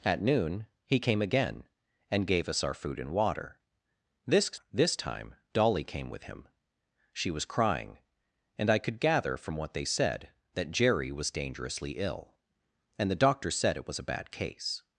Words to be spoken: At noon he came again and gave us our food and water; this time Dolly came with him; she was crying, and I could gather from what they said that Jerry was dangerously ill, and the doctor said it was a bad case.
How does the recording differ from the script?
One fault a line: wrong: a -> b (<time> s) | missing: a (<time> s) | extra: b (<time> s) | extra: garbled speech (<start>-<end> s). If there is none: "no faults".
extra: this (4.7 s)